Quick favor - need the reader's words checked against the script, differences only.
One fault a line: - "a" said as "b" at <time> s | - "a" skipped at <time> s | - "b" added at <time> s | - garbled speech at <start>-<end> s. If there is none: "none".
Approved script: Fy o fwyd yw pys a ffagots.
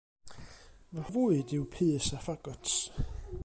none